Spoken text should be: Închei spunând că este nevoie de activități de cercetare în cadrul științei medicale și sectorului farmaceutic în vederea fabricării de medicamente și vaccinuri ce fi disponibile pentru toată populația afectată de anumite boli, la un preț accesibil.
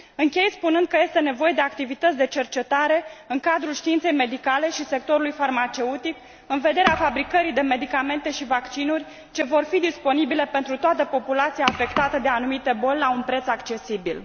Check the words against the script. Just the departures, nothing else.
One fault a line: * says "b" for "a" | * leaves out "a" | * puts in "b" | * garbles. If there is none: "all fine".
* puts in "vor"